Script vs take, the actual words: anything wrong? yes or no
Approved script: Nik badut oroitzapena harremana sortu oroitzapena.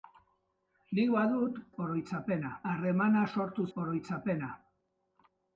no